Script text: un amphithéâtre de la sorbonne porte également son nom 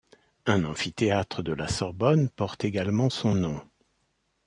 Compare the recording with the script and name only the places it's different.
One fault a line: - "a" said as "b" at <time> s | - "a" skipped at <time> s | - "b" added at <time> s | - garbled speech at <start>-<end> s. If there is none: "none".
none